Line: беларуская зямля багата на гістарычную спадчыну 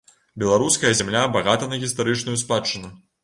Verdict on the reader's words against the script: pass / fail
pass